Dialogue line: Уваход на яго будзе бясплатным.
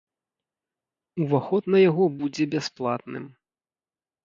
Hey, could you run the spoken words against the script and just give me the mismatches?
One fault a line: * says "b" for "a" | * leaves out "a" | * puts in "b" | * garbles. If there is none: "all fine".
all fine